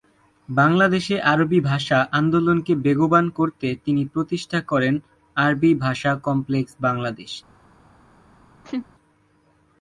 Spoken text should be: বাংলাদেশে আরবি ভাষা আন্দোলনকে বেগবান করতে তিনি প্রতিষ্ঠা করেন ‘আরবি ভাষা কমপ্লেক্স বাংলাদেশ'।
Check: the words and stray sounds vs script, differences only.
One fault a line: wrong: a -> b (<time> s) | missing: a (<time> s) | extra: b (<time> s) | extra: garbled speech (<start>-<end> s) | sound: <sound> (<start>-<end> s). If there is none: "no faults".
sound: laugh (8.6-8.9 s)